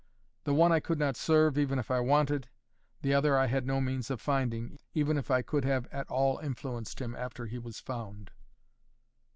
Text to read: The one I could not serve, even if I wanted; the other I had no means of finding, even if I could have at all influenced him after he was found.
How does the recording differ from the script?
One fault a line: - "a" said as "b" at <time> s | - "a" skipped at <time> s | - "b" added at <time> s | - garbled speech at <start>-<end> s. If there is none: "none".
none